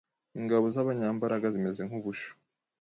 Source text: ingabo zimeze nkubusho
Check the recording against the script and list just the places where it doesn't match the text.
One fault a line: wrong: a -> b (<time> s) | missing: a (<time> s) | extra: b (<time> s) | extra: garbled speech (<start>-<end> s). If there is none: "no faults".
extra: zabanyambaraga (0.7 s)